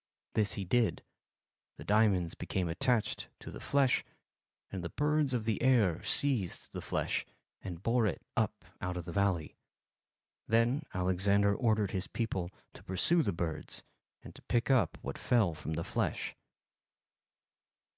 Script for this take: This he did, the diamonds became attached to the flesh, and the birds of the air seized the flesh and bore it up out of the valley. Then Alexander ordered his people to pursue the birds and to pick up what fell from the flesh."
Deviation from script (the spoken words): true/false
false